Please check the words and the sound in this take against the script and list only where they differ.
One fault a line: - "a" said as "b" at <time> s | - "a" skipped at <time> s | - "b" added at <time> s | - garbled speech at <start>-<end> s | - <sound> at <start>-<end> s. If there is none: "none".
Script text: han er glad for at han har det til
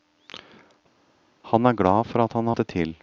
none